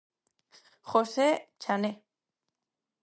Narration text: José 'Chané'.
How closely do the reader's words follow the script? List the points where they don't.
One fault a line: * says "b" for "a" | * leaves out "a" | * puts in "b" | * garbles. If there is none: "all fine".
all fine